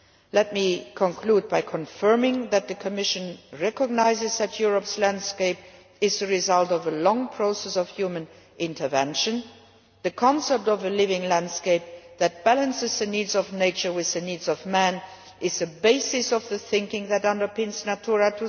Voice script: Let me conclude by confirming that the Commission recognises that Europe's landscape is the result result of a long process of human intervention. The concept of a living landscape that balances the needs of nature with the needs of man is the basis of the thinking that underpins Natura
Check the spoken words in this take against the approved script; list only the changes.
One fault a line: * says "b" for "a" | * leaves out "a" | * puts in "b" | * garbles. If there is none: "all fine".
* leaves out "result"